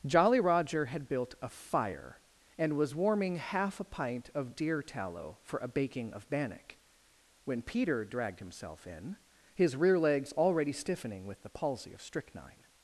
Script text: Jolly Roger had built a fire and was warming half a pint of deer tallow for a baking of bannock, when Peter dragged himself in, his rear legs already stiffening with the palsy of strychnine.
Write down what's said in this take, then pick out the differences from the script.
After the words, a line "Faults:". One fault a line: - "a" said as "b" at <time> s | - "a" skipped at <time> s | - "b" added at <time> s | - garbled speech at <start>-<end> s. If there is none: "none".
Jolly Roger had built a fire and was warming half a pint of deer tallow for a baking of bannock, when Peter dragged himself in, his rear legs already stiffening with the palsy of strychnine.
Faults:
none